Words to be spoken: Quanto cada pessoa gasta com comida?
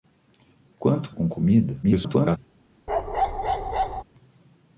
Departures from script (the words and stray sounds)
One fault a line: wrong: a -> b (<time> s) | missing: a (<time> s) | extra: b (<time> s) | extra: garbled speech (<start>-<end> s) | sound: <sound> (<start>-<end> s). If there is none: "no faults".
missing: cada pessoa gasta (1.1 s)
extra: garbled speech (1.8-2.4 s)
sound: bark (2.9-4.0 s)